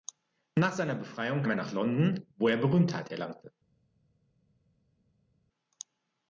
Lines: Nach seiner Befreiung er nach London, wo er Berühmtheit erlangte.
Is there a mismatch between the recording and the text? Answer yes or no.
no